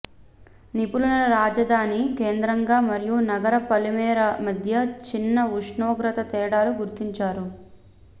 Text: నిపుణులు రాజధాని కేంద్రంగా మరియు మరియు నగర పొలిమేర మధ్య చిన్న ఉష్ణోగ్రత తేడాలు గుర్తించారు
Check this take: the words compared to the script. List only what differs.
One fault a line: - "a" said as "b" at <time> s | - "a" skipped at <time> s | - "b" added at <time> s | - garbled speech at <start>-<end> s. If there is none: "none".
- "మరియు" skipped at 3.2 s